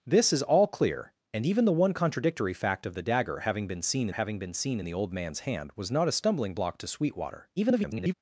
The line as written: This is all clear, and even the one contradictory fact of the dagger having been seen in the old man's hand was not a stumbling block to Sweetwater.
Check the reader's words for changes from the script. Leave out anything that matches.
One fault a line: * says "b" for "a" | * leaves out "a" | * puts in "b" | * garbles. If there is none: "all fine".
* puts in "having been seen"
* garbles